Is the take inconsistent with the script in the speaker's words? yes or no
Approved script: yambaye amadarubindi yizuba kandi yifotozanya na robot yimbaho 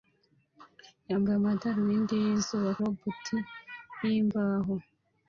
yes